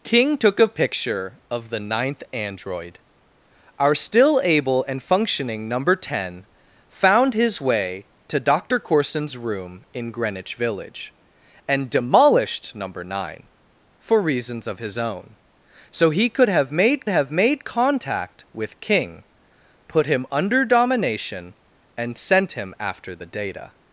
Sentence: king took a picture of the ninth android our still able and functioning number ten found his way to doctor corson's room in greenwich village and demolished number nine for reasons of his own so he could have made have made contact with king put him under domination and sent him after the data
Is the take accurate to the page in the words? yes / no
yes